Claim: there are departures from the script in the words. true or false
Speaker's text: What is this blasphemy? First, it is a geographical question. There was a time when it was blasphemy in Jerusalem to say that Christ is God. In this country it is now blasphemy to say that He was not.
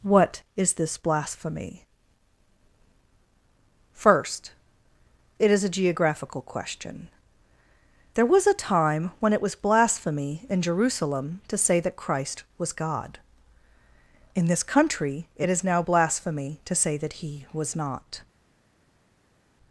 true